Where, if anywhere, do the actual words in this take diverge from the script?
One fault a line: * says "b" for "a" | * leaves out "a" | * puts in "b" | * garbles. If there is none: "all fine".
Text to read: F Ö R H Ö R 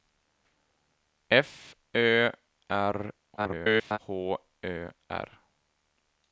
* garbles